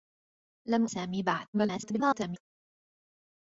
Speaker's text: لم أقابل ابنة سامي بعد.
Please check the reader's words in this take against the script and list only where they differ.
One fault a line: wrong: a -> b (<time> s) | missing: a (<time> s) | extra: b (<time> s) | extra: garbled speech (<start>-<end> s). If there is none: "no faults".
missing: أقابل ابنة (0.8 s)
extra: garbled speech (1.5-2.4 s)